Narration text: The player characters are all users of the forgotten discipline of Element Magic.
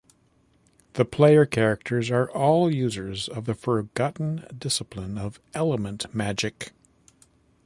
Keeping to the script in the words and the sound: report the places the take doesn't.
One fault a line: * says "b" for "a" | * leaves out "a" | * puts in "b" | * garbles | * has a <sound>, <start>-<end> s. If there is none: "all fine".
all fine